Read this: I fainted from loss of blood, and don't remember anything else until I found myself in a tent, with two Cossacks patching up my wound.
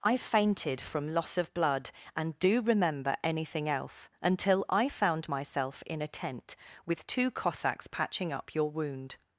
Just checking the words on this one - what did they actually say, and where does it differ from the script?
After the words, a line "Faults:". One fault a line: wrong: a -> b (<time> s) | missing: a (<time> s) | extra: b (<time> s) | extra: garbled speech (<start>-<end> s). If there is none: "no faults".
I fainted from loss of blood, and do remember anything else until I found myself in a tent, with two Cossacks patching up your wound.
Faults:
wrong: don't -> do (2.4 s)
wrong: my -> your (8.6 s)